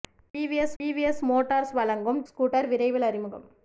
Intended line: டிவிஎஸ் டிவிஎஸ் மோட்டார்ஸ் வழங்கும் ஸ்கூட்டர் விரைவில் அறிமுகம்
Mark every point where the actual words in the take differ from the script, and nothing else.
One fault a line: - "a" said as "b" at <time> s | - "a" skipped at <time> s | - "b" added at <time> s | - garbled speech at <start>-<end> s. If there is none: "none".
none